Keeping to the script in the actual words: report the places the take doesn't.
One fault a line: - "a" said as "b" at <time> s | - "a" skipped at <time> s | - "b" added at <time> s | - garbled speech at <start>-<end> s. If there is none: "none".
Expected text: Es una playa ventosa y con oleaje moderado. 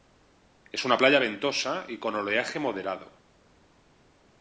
none